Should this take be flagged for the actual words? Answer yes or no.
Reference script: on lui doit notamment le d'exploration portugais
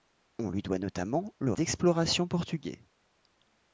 no